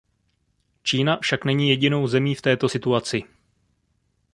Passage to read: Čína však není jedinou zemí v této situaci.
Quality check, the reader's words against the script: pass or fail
pass